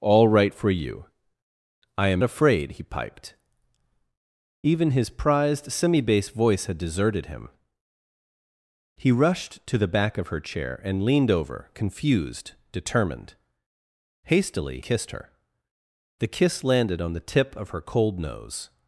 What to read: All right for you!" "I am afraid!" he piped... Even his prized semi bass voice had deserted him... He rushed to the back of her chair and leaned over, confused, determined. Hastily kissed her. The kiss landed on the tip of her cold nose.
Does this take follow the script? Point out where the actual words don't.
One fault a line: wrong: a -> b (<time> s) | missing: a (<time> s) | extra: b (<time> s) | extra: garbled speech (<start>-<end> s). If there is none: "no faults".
no faults